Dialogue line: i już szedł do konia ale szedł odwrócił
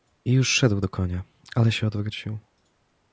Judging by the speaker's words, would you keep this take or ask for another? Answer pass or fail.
fail